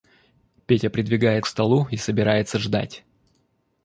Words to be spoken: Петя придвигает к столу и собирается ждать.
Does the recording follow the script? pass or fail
pass